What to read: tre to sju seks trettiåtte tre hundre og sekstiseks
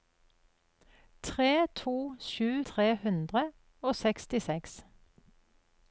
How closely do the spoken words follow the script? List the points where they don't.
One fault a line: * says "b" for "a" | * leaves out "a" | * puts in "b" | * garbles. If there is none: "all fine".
* leaves out "seks trettiåtte"